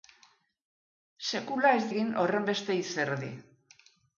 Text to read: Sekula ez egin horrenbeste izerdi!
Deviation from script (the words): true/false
false